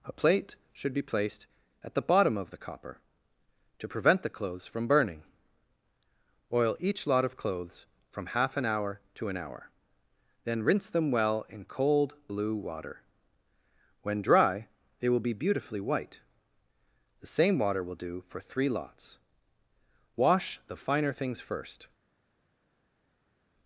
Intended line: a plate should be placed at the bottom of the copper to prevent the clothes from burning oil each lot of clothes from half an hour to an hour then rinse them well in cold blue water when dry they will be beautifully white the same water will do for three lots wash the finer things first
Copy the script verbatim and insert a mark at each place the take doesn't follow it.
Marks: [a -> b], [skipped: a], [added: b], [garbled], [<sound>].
a plate should be placed at the bottom of the copper to prevent the clothes from burning oil each lot of clothes from half an hour to an hour then rinse them well in cold blue water when dry they will be beautifully white the same water will do for three lots wash the finer things first